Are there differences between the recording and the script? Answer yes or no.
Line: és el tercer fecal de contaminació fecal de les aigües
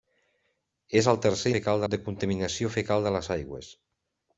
no